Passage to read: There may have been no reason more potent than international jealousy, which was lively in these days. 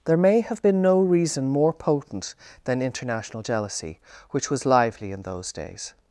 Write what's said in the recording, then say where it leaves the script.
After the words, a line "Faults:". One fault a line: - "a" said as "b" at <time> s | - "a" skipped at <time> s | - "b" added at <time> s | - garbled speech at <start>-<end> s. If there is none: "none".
There may have been no reason more potent than international jealousy, which was lively in those days.
Faults:
- "these" said as "those" at 5.2 s